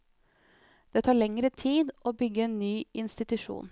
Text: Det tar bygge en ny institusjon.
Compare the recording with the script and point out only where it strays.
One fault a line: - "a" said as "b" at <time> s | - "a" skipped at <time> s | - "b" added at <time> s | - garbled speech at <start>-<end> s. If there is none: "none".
- "lengre tid å" added at 1.2 s